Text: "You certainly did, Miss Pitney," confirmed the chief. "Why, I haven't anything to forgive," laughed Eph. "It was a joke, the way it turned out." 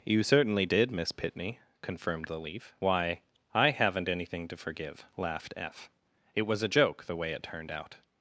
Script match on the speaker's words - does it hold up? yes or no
no